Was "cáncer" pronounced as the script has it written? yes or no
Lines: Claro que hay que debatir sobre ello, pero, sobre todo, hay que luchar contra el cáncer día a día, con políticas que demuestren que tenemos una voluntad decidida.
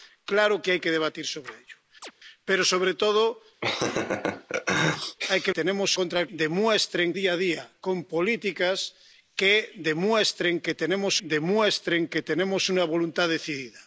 no